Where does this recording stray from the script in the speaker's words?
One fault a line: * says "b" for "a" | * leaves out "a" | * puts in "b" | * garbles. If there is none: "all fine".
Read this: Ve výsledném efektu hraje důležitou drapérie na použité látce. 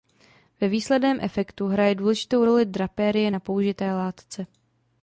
* puts in "roli"